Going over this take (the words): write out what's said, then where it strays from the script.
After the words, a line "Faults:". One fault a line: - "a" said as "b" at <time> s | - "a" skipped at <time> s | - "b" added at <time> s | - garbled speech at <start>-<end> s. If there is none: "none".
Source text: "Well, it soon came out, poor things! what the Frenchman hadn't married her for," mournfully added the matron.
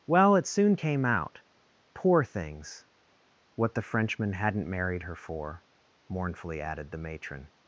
"Well, it soon came out, poor things! what the Frenchman hadn't married her for," mournfully added the matron.
Faults:
none